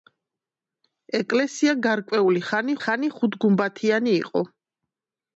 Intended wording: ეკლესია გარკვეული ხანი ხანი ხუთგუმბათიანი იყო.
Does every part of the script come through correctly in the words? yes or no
yes